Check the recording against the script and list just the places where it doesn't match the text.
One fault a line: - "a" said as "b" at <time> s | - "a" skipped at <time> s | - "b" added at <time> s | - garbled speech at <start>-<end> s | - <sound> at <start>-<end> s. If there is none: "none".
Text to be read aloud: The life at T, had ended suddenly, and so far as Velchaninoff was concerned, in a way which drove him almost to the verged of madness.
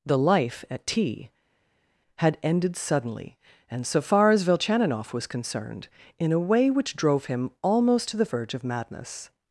- "verged" said as "verge" at 8.2 s